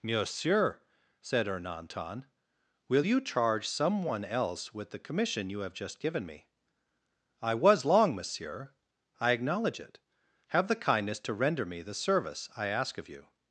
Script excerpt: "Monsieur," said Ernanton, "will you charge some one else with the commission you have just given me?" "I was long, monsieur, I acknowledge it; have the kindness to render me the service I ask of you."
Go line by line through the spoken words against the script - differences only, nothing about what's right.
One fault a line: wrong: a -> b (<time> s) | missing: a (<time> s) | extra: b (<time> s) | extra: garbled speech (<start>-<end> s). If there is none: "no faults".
no faults